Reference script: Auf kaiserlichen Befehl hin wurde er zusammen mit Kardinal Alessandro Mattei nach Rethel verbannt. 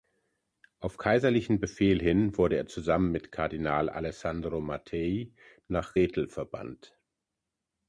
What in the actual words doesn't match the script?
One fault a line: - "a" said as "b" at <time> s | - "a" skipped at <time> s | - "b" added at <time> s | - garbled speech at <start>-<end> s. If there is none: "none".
none